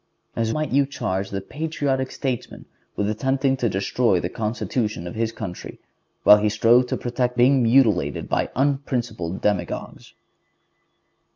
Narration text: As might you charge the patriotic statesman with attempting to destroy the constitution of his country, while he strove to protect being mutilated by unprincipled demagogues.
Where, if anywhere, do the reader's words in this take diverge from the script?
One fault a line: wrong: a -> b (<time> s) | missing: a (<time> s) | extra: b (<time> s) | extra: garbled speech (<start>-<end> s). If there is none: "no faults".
no faults